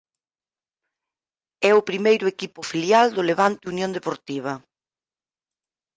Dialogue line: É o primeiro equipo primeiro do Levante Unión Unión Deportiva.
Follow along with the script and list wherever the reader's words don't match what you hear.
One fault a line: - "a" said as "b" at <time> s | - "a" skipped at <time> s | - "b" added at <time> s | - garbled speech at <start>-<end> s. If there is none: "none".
- "primeiro" said as "filial" at 2.7 s
- "Unión" skipped at 3.9 s